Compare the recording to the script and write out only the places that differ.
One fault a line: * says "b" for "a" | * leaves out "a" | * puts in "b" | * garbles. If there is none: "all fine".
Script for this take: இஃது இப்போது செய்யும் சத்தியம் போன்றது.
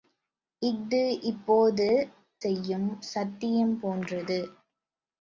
all fine